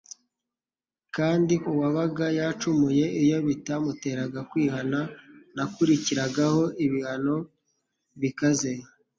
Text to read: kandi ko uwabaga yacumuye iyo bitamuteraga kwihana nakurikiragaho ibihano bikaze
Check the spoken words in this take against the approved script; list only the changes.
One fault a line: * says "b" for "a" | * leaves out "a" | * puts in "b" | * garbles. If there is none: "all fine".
* leaves out "ko"